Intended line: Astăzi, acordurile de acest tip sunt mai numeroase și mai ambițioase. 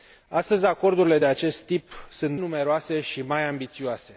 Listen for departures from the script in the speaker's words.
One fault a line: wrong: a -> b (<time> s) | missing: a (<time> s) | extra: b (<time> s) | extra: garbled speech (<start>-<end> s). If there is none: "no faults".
missing: mai (2.4 s)